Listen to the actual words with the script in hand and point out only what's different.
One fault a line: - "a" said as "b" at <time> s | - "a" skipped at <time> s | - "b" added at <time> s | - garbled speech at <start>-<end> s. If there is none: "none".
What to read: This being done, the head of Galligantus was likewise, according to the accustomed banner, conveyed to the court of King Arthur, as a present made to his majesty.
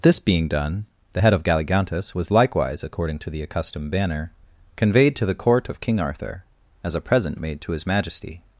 none